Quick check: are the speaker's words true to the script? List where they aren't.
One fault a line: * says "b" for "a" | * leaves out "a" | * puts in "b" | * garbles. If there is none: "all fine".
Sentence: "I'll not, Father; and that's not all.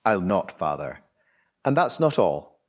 all fine